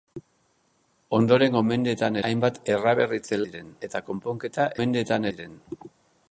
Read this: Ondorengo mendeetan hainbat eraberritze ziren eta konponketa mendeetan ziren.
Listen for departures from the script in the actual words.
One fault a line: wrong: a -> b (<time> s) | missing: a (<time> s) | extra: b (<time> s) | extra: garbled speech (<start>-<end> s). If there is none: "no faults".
no faults